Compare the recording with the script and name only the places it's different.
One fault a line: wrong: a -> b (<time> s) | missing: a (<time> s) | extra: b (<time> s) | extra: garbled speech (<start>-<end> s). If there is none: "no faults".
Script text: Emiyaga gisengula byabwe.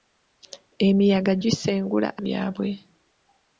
no faults